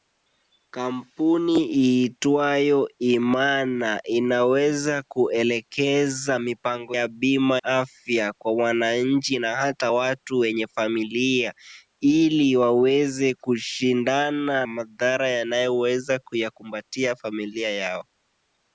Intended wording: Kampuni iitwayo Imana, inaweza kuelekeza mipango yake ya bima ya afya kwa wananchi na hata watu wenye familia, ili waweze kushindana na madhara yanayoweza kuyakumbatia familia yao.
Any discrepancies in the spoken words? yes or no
yes